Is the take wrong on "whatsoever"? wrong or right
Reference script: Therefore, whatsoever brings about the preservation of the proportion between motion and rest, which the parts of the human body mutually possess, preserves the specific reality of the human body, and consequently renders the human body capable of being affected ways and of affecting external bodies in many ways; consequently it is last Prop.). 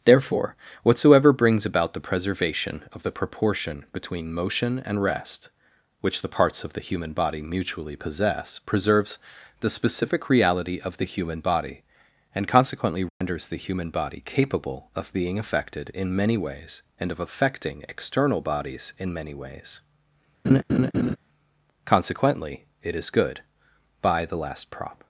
right